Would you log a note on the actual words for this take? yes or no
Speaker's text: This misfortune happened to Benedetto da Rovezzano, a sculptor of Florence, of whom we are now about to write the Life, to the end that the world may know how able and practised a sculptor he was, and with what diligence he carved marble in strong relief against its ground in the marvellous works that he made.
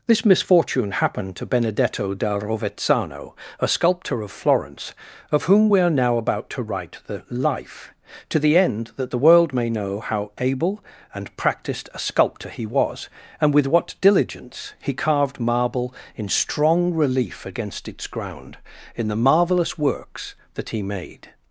no